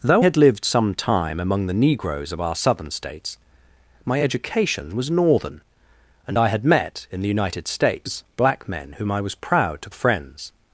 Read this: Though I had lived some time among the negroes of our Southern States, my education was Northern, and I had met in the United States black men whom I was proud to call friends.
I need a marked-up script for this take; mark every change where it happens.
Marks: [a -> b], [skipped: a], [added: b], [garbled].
Though [skipped: I] had lived some time among the negroes of our Southern States, my education was Northern, and I had met in the United States black men whom I was proud to [skipped: call] friends.